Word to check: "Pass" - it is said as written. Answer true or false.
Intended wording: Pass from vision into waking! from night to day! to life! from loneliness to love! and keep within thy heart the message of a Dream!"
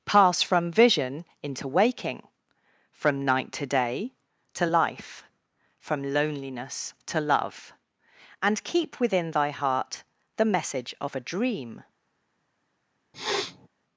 true